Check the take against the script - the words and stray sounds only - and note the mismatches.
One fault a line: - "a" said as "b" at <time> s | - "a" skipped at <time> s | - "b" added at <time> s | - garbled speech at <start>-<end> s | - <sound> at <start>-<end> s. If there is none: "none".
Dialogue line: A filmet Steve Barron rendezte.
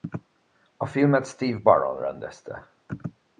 none